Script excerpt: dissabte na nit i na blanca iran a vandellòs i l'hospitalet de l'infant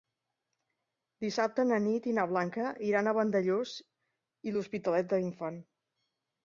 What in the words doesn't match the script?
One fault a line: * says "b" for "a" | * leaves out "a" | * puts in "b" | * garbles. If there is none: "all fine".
all fine